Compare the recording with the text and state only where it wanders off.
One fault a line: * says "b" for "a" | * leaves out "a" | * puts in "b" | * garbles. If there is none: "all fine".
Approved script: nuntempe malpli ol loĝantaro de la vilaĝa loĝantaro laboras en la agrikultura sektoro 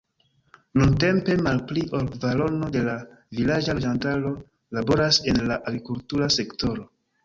* says "kvarono" for "loĝantaro"